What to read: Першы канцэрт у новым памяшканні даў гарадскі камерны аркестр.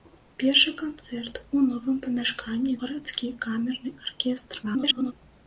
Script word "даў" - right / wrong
wrong